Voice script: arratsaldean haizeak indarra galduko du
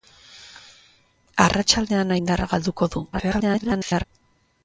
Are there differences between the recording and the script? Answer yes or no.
yes